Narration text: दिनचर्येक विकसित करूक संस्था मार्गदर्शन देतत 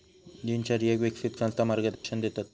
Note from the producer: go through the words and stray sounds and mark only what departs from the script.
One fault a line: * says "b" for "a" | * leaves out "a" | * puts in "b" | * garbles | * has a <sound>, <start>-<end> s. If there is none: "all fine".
* leaves out "करूक"
* has a dropout, 2.0-2.0 s